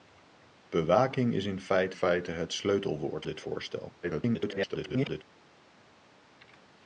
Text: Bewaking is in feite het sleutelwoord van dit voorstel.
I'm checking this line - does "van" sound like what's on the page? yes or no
no